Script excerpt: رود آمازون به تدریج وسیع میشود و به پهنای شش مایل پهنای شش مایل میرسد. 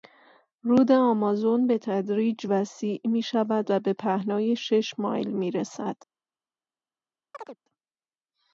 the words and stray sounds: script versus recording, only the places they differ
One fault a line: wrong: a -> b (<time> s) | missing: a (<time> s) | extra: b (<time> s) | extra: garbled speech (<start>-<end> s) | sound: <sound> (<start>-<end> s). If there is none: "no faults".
missing: پهنای شش مایل (5.3 s)
sound: chirp (7.3-7.6 s)